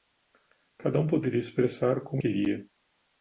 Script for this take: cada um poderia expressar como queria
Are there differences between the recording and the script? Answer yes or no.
no